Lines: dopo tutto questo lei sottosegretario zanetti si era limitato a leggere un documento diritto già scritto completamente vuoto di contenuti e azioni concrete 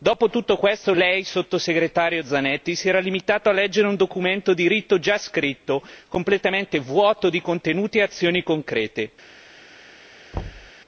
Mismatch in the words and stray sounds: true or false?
true